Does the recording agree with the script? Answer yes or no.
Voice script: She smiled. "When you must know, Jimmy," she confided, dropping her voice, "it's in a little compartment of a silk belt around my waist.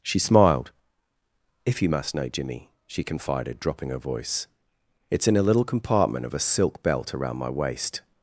no